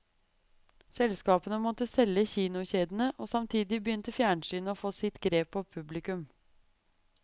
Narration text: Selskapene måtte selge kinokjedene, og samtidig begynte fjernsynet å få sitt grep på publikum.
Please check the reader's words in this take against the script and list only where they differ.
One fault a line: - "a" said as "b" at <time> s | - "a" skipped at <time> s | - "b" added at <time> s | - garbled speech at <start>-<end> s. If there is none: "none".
none